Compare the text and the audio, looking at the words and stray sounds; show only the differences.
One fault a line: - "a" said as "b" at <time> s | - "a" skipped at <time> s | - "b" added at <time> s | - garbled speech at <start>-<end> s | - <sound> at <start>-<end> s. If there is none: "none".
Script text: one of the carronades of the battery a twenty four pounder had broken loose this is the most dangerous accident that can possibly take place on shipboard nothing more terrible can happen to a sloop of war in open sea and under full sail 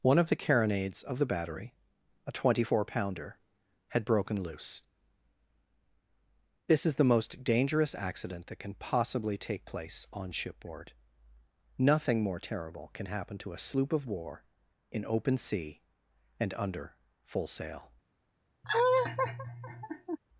- laugh at 18.6-20.2 s